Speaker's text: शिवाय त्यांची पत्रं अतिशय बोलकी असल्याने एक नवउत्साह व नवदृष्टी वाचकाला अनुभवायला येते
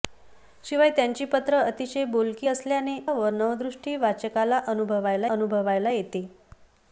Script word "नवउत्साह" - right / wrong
wrong